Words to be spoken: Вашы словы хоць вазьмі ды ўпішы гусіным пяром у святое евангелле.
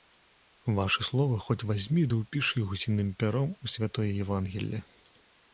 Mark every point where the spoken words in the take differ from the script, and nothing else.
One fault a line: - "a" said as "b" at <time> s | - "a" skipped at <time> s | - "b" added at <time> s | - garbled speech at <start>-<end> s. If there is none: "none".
none